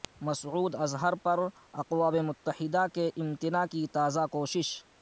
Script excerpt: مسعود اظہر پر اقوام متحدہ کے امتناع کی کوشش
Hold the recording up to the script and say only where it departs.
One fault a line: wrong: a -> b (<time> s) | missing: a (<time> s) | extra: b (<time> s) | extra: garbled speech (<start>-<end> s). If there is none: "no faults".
extra: تازہ (3.9 s)